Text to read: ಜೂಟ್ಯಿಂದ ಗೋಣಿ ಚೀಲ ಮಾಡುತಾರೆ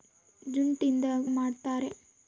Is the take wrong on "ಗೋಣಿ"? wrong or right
wrong